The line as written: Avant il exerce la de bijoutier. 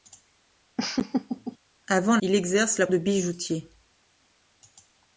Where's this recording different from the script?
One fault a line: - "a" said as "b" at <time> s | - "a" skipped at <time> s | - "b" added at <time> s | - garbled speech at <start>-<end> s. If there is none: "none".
none